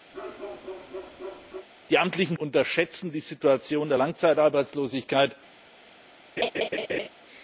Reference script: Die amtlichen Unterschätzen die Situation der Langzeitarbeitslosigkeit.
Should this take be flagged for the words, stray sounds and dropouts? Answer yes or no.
yes